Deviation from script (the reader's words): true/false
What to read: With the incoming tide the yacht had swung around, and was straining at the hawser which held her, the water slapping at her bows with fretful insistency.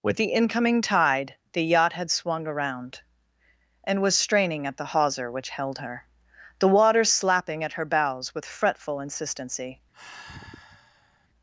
false